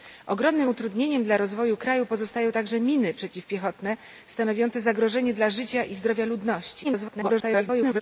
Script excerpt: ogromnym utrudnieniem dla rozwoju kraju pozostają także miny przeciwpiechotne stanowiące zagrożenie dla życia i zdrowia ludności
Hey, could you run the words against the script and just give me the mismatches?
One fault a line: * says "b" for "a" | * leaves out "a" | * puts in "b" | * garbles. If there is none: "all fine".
* garbles